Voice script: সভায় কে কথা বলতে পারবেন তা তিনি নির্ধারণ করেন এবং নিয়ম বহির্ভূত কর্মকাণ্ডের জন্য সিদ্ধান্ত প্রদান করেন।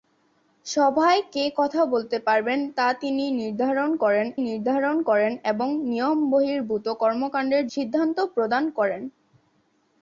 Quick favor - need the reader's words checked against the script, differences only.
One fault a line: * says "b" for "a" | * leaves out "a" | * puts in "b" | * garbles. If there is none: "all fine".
* puts in "নির্ধারণ করেন"
* leaves out "জন্য"